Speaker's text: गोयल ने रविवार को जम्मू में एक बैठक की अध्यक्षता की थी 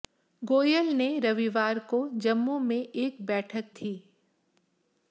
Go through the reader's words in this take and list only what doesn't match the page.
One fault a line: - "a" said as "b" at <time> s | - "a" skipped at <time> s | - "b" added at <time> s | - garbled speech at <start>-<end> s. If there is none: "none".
- "की अध्यक्षता की" skipped at 3.7 s